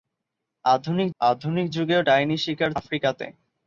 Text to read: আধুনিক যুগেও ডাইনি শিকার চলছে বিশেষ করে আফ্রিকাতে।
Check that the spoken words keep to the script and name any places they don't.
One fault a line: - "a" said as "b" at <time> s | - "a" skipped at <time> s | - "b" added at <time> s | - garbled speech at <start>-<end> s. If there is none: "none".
- "আধুনিক" added at 1.2 s
- "চলছে বিশেষ করে" skipped at 2.7 s